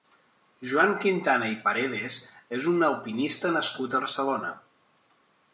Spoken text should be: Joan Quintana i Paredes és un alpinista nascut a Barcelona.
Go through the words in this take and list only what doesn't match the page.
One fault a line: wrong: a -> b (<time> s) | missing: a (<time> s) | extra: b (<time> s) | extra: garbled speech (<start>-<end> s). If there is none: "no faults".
no faults